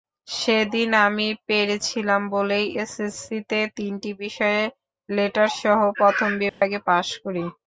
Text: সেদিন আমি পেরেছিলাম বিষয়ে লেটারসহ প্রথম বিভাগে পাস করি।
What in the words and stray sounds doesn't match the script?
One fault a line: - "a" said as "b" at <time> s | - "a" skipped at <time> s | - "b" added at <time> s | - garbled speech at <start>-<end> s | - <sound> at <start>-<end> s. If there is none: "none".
- "বলেই এসএসসিতে তিনটি" added at 2.3 s
- dropout at 6.5-6.6 s